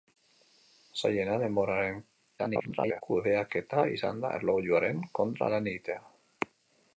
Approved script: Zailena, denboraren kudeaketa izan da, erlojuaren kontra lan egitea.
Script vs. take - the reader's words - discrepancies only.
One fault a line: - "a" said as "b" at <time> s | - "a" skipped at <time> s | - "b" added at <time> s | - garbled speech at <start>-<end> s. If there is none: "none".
- garbled speech at 2.4-3.0 s